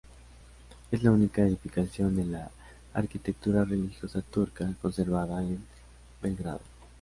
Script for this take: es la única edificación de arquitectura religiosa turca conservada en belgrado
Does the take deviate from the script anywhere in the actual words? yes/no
yes